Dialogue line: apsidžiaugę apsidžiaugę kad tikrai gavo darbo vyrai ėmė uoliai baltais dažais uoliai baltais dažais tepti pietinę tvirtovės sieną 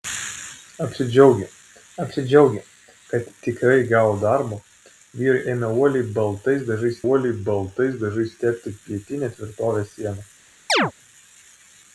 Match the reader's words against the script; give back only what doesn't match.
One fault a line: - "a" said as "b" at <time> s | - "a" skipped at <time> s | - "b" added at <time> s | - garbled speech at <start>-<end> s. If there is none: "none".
none